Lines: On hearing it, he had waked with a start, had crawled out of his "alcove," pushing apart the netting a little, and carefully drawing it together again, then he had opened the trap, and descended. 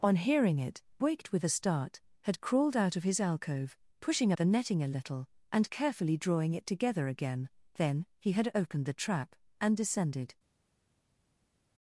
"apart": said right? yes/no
no